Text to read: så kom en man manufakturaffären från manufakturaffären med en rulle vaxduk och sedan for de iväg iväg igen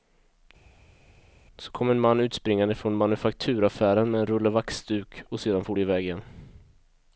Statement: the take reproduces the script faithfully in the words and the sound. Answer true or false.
false